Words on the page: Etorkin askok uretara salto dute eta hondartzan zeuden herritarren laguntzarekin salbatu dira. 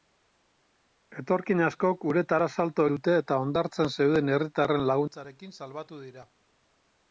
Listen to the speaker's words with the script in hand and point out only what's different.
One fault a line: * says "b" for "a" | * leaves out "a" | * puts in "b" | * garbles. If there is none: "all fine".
all fine